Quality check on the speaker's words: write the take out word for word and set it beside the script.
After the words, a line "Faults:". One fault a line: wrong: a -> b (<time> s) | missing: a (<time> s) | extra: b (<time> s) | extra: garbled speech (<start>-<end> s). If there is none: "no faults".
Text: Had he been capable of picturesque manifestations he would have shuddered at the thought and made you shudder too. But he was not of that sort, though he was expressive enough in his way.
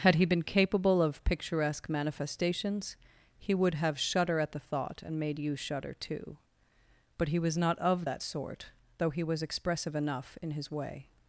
Had he been capable of picturesque manifestations he would have shudder at the thought and made you shudder too. But he was not of that sort, though he was expressive enough in his way.
Faults:
wrong: shuddered -> shudder (4.0 s)